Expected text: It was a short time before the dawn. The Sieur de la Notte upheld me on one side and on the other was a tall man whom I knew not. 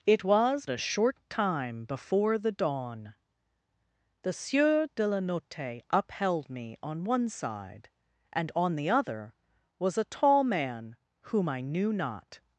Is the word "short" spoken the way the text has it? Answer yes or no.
yes